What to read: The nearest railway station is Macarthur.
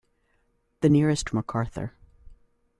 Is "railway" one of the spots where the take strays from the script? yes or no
yes